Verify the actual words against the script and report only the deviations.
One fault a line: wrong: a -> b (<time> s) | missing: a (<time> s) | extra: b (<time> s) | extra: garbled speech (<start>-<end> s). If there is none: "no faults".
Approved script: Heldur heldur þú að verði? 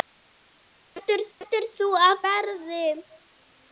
no faults